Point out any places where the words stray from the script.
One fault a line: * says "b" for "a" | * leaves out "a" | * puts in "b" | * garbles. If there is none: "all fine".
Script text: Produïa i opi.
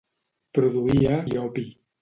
all fine